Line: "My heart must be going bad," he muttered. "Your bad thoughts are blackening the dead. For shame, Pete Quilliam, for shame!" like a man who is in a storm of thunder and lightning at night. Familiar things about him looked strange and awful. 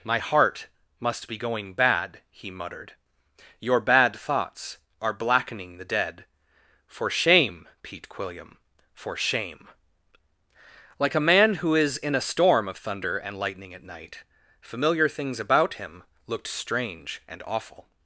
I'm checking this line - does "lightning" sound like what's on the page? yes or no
yes